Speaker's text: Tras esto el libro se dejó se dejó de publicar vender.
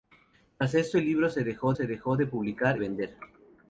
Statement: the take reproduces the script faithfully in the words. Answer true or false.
true